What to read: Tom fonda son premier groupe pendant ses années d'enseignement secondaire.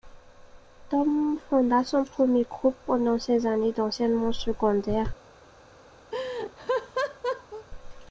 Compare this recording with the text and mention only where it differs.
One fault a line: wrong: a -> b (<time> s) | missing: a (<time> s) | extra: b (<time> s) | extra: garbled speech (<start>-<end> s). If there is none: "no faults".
no faults